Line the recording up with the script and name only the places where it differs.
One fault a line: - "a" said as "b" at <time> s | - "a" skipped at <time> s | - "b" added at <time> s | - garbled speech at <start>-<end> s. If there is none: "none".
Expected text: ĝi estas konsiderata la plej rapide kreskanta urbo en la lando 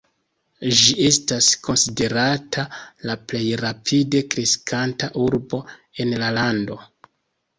none